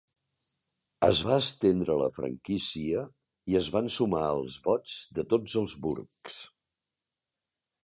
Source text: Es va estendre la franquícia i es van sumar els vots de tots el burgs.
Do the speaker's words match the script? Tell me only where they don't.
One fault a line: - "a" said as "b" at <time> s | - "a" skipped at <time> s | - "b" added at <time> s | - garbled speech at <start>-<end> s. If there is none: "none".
- "el" said as "els" at 5.6 s